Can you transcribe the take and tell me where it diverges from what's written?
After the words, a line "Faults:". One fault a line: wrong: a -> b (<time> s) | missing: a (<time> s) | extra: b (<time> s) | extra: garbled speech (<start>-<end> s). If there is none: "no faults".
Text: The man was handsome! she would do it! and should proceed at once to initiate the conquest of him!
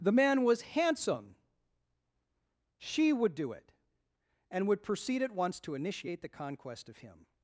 The man was handsome! she would do it! and would proceed at once to initiate the conquest of him!
Faults:
wrong: should -> would (4.7 s)